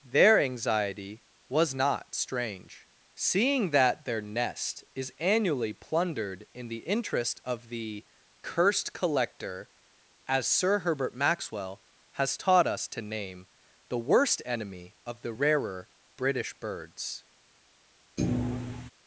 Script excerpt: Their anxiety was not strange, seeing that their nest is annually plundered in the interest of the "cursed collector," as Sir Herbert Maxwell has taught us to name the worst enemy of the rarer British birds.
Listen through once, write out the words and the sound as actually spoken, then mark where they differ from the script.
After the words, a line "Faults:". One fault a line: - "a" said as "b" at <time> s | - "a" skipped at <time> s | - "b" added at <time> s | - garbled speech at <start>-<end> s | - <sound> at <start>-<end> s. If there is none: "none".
Their anxiety was not strange, seeing that their nest is annually plundered in the interest of the "cursed collector," as Sir Herbert Maxwell has taught us to name the worst enemy of the rarer British birds.
Faults:
- thud at 18.2-18.9 s